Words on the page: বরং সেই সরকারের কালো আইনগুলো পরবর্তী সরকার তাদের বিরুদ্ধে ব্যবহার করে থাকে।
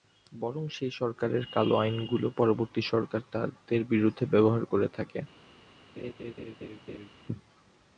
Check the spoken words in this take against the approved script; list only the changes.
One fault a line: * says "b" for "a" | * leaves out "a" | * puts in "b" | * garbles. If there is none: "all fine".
all fine